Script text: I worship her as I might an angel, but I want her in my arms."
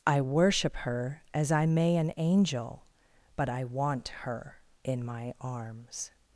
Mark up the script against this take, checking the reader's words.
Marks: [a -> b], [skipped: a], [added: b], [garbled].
I worship her as I [might -> may] an angel, but I want her in my arms."